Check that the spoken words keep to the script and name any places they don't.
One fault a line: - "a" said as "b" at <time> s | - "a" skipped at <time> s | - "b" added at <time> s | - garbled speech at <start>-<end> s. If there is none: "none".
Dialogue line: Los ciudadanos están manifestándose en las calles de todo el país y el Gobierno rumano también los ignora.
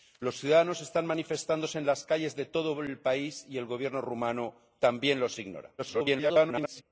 - garbled speech at 5.8-6.8 s